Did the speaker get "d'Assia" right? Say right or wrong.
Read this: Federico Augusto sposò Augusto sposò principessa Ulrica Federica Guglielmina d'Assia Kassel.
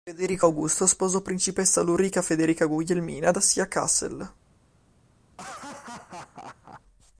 right